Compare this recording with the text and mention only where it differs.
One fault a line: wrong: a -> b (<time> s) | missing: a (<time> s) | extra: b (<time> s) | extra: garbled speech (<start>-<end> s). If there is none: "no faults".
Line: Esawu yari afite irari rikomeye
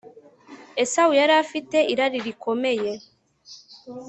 no faults